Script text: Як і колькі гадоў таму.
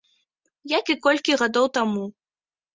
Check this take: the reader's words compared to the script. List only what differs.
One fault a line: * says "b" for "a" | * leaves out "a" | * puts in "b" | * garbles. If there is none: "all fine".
all fine